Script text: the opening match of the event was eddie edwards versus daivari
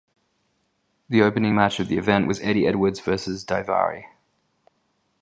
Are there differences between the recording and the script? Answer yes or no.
no